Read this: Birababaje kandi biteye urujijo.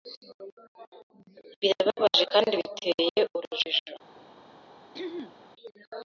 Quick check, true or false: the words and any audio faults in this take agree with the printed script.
false